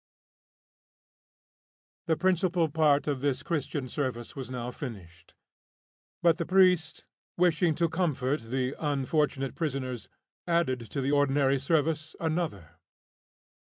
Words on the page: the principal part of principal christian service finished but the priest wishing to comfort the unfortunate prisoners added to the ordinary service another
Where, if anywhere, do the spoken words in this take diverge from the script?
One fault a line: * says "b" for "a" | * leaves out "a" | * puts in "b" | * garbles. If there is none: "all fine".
* says "this" for "principal"
* puts in "was now"